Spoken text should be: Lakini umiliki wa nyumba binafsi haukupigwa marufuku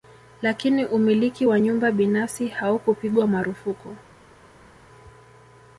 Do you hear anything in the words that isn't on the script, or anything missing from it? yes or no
no